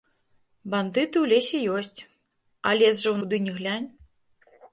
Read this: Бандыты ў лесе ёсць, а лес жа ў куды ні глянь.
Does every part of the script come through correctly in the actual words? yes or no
yes